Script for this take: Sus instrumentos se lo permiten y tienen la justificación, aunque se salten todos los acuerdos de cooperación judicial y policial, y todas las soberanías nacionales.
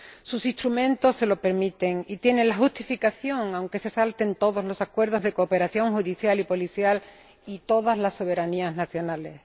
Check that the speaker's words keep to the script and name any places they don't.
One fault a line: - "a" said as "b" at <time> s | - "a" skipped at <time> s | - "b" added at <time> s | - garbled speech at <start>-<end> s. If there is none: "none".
none